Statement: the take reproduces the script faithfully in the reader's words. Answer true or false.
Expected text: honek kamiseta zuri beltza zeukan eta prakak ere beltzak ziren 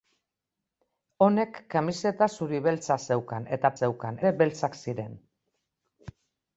false